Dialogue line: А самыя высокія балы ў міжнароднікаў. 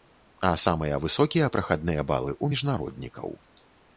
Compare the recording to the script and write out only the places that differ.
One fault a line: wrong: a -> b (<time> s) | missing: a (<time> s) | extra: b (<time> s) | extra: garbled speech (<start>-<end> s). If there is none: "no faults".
extra: прахадныя (1.6 s)